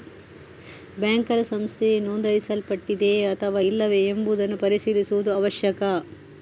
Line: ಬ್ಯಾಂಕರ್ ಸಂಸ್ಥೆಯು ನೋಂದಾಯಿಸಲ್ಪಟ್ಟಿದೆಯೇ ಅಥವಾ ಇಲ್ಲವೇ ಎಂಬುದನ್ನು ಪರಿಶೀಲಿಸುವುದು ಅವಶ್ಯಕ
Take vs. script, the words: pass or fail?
pass